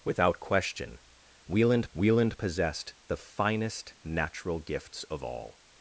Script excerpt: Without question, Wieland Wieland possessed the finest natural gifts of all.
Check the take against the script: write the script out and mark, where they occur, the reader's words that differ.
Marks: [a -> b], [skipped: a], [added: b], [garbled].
Without question, Wieland Wieland possessed the finest natural gifts of all.